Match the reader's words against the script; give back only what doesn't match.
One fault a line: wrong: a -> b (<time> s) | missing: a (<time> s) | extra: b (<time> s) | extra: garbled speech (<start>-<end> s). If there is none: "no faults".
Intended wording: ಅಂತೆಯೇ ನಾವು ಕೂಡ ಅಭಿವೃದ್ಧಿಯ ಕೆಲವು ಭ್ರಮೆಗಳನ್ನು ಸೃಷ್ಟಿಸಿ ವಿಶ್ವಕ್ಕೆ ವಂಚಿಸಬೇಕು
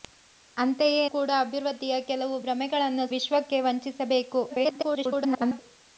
missing: ನಾವು (1.0 s)
missing: ಸೃಷ್ಟಿಸಿ (3.1 s)
extra: garbled speech (4.5-5.6 s)